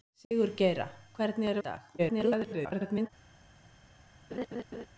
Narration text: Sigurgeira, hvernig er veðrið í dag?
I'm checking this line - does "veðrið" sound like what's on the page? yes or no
no